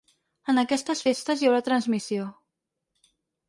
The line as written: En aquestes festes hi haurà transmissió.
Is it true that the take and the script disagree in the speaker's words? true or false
false